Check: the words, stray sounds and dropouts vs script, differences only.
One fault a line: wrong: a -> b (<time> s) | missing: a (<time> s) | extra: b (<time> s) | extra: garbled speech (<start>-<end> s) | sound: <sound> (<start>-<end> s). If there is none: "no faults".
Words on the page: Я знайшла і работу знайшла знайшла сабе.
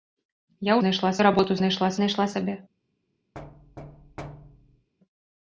sound: thud (3.3-4.9 s)